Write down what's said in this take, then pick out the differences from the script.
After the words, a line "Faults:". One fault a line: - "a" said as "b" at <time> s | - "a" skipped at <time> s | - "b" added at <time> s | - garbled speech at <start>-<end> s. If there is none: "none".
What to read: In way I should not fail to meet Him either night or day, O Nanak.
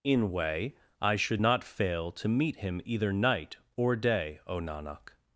In way I should not fail to meet Him either night or day, O Nanak.
Faults:
none